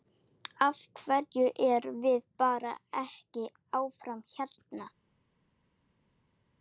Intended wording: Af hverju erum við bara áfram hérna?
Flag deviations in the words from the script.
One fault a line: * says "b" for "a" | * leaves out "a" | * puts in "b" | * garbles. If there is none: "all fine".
* puts in "ekki"